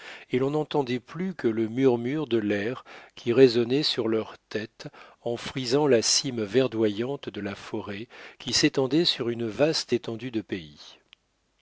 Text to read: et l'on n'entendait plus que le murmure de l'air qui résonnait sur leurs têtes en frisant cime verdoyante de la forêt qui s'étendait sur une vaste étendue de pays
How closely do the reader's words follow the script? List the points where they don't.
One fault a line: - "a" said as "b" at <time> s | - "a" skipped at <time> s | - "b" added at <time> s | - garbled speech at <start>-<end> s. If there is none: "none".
- "la" added at 5.8 s